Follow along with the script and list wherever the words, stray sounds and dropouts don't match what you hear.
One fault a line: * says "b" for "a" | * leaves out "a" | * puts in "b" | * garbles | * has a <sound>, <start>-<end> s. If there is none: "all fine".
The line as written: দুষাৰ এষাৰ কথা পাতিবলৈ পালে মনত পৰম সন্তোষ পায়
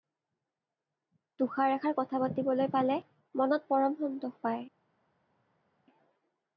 all fine